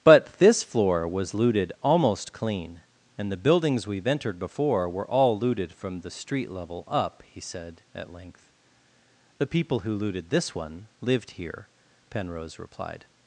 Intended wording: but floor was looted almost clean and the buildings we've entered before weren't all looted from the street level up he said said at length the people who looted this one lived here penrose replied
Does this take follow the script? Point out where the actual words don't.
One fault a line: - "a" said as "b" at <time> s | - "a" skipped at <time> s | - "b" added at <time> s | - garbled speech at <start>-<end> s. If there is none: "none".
- "this" added at 0.4 s
- "weren't" said as "were" at 4.9 s
- "said" skipped at 7.8 s